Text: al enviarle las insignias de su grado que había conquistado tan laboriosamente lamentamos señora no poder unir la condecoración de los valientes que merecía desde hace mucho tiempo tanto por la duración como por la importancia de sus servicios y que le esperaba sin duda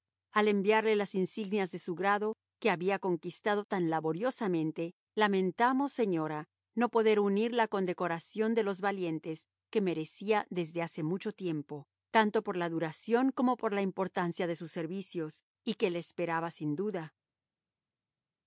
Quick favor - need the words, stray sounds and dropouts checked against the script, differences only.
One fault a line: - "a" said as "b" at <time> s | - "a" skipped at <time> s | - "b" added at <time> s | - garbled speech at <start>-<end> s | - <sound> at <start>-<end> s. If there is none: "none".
none